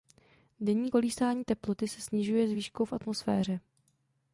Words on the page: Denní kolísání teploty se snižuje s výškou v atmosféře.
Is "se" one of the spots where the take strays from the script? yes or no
no